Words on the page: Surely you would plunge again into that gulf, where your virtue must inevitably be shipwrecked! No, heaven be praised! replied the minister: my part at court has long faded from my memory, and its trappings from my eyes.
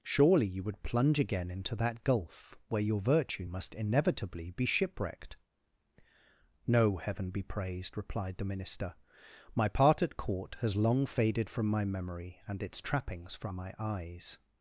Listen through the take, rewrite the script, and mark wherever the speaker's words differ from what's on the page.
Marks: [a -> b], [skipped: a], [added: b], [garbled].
Surely you would plunge again into that gulf, where your virtue must inevitably be shipwrecked! No, heaven be praised! replied the minister: my part at court has long faded from my memory, and its trappings from my eyes.